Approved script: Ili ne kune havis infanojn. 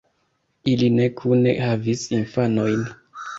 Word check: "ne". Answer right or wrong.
right